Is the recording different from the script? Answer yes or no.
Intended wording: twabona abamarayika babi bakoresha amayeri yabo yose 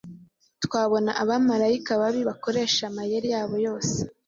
no